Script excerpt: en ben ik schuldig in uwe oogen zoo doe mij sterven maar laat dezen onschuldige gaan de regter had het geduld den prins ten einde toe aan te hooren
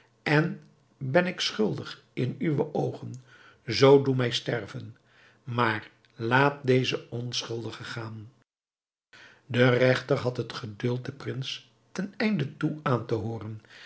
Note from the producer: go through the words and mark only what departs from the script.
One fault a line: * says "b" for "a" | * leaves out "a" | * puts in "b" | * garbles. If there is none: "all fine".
all fine